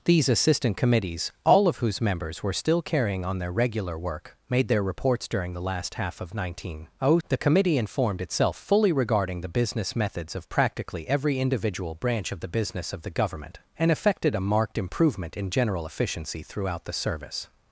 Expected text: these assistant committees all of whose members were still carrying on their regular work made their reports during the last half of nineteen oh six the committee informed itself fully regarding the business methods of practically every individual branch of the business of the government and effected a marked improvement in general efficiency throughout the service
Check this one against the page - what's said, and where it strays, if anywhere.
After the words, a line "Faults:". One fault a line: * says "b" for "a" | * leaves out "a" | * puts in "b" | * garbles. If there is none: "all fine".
these assistant committees all of whose members were still carrying on their regular work made their reports during the last half of nineteen oh the committee informed itself fully regarding the business methods of practically every individual branch of the business of the government and effected a marked improvement in general efficiency throughout the service
Faults:
* leaves out "six"